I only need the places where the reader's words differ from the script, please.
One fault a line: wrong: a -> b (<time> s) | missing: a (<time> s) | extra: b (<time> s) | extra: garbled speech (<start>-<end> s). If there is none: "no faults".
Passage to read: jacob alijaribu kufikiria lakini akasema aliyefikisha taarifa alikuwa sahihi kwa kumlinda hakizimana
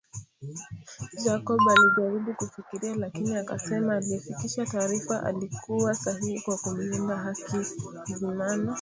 no faults